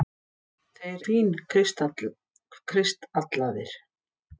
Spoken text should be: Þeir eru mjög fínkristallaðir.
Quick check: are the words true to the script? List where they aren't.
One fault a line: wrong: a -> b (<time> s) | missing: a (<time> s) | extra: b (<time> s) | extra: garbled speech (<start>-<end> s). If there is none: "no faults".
missing: eru mjög (1.0 s)